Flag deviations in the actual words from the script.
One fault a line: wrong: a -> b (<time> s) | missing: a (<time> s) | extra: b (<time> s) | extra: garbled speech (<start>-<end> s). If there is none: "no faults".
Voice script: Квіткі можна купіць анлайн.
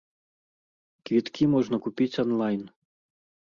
no faults